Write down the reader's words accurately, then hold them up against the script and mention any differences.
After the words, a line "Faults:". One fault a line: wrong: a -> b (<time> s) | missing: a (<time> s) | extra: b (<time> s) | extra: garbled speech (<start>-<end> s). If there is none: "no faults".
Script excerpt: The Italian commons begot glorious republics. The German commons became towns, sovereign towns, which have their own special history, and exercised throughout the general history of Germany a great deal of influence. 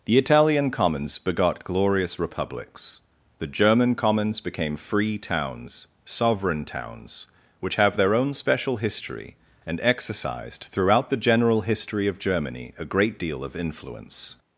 The Italian commons begot glorious republics. The German commons became free towns, sovereign towns, which have their own special history, and exercised throughout the general history of Germany a great deal of influence.
Faults:
extra: free (4.8 s)